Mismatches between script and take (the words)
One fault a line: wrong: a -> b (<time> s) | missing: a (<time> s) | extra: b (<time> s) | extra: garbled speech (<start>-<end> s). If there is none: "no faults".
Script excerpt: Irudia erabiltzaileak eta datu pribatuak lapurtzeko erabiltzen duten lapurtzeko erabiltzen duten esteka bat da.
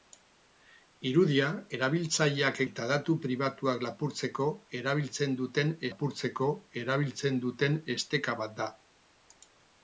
no faults